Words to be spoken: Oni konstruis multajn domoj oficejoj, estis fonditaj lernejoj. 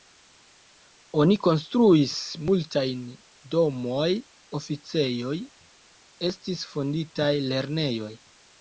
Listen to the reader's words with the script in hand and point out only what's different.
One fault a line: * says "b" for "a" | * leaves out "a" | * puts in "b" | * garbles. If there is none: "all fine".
all fine